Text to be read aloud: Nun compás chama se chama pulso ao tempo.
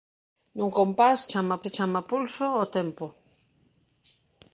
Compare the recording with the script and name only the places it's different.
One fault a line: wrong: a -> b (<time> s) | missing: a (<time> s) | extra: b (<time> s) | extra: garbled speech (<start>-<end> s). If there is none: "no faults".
no faults